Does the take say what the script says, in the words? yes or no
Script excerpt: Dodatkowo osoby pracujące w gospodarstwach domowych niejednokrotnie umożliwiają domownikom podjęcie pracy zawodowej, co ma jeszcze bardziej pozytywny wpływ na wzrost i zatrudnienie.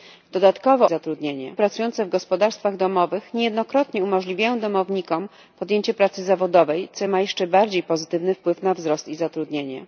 no